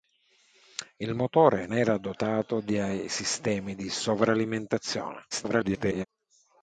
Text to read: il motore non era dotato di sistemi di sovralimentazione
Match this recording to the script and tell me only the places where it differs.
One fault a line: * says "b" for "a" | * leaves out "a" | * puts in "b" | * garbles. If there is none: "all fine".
* leaves out "non"
* garbles